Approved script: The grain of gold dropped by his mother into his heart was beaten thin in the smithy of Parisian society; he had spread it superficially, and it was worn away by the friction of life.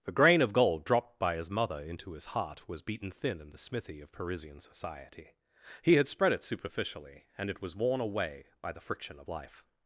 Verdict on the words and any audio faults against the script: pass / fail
pass